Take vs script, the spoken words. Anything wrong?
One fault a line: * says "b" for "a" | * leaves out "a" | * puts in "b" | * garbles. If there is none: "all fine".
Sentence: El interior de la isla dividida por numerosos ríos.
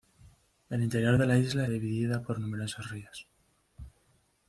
all fine